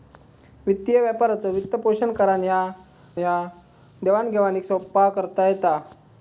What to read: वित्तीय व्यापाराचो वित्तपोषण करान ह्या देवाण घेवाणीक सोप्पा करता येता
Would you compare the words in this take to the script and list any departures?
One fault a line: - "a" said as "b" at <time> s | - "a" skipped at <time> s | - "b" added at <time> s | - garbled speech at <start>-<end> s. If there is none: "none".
- "ह्या" added at 3.2 s